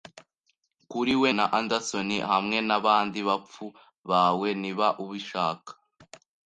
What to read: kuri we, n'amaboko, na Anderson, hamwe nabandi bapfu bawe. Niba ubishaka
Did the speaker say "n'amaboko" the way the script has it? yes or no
no